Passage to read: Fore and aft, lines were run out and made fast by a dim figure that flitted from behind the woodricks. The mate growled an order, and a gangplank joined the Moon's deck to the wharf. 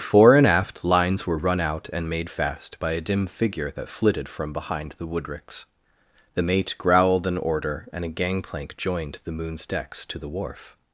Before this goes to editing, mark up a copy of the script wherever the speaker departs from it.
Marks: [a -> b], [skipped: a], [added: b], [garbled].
Fore and aft, lines were run out and made fast by a dim figure that flitted from behind the woodricks. The mate growled an order, and a gangplank joined the Moon's [deck -> decks] to the wharf.